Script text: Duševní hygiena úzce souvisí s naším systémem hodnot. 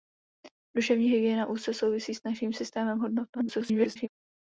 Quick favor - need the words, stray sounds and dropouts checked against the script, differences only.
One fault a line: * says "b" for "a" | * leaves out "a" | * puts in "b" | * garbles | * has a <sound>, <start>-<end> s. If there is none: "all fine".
* garbles